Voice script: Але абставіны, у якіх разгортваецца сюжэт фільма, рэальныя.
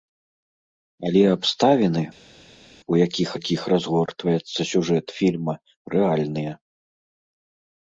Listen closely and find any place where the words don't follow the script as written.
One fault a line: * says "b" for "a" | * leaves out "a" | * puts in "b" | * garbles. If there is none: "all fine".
* puts in "якіх"